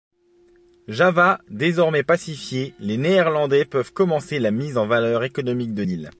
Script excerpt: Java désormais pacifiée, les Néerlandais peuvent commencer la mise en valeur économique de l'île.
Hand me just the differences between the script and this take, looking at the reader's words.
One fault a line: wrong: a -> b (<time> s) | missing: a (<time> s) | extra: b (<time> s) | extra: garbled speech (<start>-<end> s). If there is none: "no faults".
no faults